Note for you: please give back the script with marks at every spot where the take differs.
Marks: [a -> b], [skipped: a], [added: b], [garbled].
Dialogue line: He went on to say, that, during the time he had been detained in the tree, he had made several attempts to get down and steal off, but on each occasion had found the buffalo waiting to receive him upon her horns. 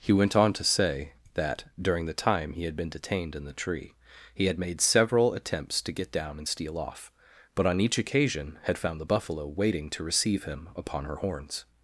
He went on to say, that, during the time he had been detained in the tree, he had made several attempts to get down and steal off, but on each occasion had found the buffalo waiting to receive him upon her horns.